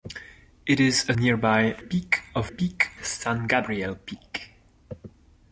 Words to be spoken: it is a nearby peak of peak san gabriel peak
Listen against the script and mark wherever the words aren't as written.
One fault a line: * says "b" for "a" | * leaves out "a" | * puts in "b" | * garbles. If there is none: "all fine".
all fine